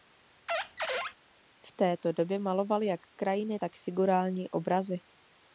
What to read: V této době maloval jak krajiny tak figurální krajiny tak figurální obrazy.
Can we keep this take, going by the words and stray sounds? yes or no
no